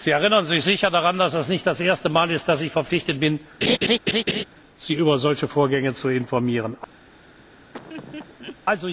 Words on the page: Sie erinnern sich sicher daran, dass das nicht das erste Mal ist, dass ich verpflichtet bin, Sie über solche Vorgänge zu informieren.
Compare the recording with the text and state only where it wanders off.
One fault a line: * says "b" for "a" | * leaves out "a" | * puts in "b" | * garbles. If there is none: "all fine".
all fine